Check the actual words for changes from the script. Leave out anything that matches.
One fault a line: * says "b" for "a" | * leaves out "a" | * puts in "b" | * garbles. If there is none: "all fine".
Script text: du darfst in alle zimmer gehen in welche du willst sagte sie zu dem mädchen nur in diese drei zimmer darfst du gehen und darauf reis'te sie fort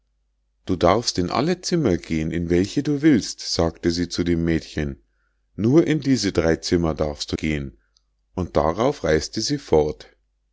all fine